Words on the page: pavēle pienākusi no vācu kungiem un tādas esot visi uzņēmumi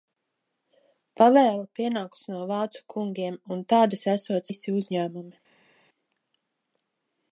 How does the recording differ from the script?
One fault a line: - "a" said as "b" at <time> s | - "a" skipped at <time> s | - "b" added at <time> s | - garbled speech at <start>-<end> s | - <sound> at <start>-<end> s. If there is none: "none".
none